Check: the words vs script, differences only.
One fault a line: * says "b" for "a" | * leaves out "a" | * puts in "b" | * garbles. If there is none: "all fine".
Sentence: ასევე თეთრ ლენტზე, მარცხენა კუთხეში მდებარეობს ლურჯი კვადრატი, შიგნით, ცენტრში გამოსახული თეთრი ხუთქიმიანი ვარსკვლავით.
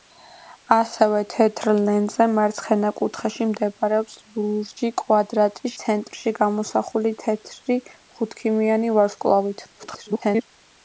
* leaves out "შიგნით"
* garbles